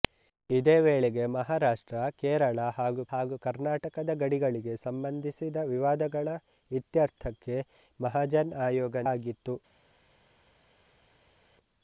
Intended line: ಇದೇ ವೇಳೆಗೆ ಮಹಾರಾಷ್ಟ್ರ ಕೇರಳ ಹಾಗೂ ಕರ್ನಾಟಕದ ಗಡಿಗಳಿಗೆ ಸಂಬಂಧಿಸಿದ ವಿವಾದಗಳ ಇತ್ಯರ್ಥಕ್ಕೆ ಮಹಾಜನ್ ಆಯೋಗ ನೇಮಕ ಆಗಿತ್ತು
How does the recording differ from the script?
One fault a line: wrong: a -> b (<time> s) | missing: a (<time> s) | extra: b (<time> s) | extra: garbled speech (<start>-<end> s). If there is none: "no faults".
extra: ಹಾಗೂ (3.1 s)
missing: ನೇಮಕ (9.0 s)